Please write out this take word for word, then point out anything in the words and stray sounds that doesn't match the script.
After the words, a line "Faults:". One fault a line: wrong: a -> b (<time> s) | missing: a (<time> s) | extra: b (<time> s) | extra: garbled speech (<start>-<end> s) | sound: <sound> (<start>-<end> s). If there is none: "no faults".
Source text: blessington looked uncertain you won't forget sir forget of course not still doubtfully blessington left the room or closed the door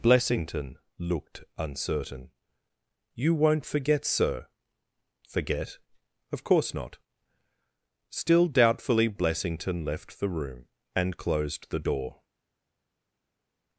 blessington looked uncertain you won't forget sir forget of course not still doubtfully blessington left the room and closed the door
Faults:
wrong: or -> and (10.9 s)